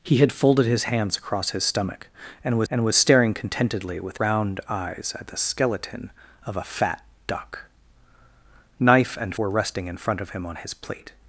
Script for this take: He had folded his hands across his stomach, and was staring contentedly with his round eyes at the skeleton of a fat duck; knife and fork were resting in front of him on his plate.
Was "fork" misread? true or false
true